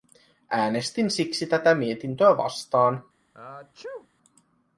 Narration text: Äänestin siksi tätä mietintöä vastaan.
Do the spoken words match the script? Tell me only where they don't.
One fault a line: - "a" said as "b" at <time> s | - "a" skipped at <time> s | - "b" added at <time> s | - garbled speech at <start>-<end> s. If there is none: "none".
none